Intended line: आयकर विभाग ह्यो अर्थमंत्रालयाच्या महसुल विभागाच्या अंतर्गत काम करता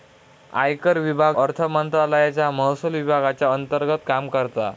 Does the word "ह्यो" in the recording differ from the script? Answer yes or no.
yes